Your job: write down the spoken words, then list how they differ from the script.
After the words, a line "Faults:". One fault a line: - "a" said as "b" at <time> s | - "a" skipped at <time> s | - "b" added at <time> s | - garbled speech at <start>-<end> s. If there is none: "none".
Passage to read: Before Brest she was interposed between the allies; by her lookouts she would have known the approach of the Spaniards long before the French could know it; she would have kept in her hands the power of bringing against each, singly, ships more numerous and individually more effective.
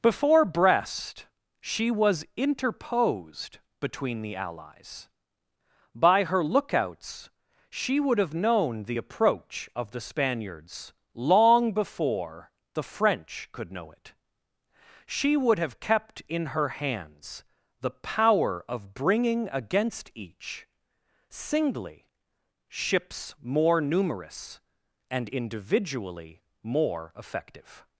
Before Brest she was interposed between the allies; by her lookouts she would have known the approach of the Spaniards long before the French could know it; she would have kept in her hands the power of bringing against each, singly, ships more numerous and individually more effective.
Faults:
none